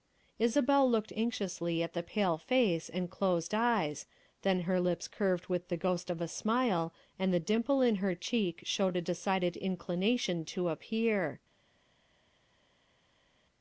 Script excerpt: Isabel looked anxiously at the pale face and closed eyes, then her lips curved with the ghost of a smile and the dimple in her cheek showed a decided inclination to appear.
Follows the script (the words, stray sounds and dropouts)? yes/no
yes